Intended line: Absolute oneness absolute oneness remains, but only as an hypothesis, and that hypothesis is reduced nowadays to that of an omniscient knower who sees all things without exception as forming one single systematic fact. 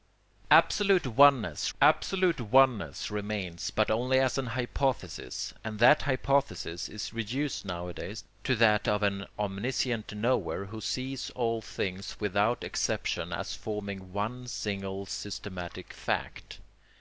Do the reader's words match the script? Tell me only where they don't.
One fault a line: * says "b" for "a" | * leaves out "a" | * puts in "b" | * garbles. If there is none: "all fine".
all fine